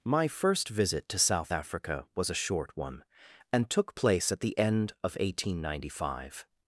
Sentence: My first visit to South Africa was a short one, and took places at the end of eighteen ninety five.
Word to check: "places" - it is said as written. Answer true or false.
false